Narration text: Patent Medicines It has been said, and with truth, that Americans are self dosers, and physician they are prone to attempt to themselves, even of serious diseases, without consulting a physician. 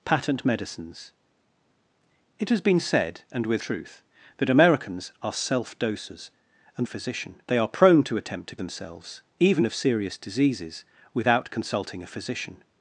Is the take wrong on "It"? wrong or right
right